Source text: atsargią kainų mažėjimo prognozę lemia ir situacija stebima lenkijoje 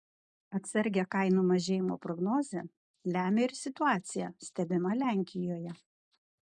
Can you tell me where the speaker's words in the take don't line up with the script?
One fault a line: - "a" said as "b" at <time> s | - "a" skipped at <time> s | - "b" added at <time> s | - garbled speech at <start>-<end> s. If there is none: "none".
none